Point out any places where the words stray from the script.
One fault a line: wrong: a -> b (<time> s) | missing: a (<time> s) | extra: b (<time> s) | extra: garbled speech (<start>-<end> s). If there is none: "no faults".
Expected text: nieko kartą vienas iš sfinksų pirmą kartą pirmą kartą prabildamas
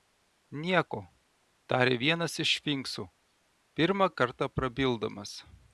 wrong: kartą -> tarė (1.7 s)
missing: pirmą kartą (4.5 s)